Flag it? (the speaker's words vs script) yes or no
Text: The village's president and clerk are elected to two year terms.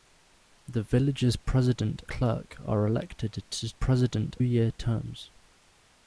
yes